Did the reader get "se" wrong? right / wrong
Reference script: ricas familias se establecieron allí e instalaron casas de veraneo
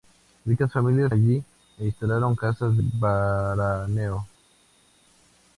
wrong